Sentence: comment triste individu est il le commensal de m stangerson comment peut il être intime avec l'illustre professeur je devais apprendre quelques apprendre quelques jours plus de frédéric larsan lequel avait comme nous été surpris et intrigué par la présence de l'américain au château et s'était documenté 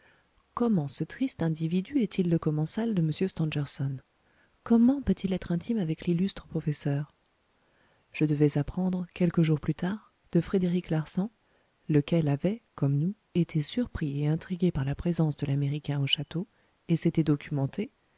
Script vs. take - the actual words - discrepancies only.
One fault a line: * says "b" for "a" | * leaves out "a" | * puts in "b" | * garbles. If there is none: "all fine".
* puts in "ce"
* leaves out "apprendre quelques"
* puts in "tard"